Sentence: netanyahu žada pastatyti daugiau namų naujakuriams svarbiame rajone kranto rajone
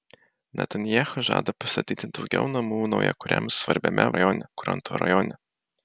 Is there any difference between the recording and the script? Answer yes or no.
no